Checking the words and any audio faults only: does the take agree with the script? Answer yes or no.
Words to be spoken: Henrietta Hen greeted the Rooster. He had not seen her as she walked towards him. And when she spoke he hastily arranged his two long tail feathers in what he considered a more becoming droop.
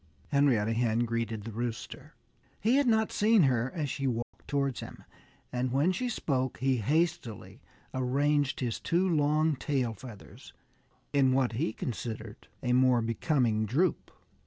no